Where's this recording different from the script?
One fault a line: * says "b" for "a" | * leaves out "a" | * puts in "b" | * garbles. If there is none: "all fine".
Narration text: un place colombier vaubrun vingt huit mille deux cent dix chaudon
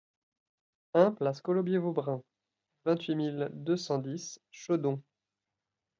all fine